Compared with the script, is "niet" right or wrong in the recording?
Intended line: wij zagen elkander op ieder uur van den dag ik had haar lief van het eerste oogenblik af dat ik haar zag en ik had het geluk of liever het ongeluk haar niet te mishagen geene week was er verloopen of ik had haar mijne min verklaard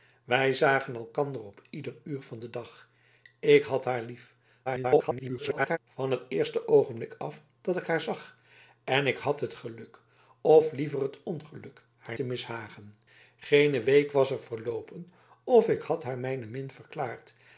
wrong